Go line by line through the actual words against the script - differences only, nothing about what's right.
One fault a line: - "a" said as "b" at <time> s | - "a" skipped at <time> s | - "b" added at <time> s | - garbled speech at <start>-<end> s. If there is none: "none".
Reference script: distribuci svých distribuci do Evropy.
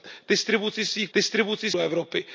none